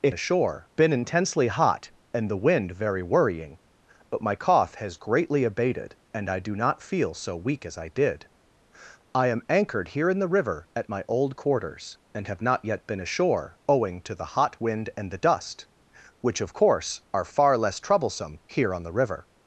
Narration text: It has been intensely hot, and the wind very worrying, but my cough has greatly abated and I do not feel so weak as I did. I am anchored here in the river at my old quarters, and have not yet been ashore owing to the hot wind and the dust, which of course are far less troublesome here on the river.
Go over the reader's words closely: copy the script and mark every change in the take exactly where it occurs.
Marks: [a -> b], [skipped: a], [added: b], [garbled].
It [has -> ashore] been intensely hot, and the wind very worrying, but my cough has greatly abated and I do not feel so weak as I did. I am anchored here in the river at my old quarters, and have not yet been ashore owing to the hot wind and the dust, which of course are far less troublesome here on the river.